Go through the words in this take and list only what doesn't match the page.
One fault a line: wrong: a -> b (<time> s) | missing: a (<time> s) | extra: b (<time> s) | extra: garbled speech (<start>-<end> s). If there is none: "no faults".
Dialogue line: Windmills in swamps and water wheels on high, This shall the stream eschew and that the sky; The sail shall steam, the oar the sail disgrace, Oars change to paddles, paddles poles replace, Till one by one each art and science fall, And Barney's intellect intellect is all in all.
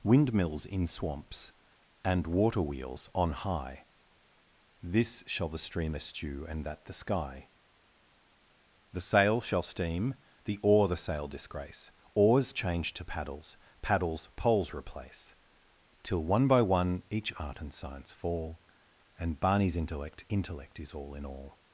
no faults